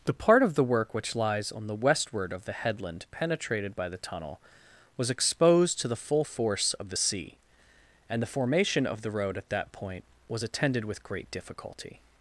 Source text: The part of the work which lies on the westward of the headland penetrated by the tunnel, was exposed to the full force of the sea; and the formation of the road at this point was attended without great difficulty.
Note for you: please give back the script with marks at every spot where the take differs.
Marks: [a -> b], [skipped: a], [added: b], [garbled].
The part of the work which lies on the westward of the headland penetrated by the tunnel, was exposed to the full force of the sea; and the formation of the road at [this -> that] point was attended [without -> with] great difficulty.